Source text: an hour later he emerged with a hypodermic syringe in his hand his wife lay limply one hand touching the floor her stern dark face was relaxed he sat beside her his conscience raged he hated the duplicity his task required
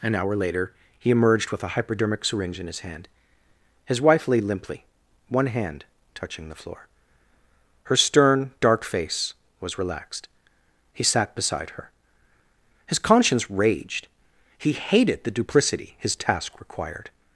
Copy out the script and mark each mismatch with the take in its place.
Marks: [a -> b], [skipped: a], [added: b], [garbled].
an hour later he emerged with a hypodermic syringe in his hand his wife lay limply one hand touching the floor her stern dark face was relaxed he sat beside her his conscience raged he hated the duplicity his task required